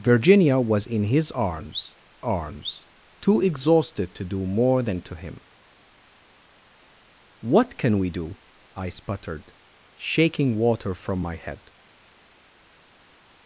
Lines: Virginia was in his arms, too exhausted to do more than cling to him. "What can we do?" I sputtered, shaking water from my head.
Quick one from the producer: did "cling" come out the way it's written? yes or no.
no